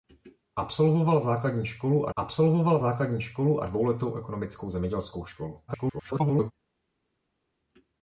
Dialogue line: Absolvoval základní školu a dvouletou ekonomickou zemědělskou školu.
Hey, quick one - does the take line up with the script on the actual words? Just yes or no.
no